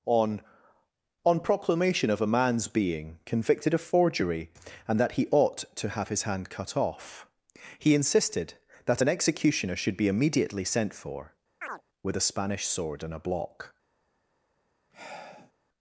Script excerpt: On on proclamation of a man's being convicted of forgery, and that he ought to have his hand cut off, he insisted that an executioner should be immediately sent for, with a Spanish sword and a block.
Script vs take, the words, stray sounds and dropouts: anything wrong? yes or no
yes